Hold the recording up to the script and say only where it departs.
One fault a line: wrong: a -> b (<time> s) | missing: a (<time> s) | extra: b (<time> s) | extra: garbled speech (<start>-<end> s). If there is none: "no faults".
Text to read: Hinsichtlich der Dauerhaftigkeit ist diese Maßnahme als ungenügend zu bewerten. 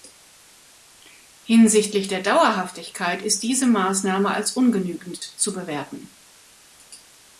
no faults